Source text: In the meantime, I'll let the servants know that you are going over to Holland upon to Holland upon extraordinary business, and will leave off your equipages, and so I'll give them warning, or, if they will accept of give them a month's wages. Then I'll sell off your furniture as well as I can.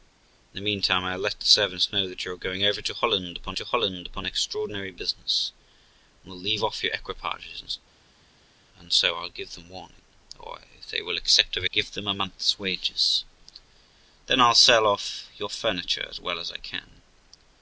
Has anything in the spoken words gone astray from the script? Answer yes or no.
no